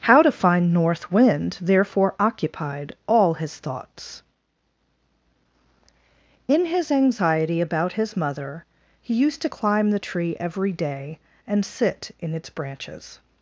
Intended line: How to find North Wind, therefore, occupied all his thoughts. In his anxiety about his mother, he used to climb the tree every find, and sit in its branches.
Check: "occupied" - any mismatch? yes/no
no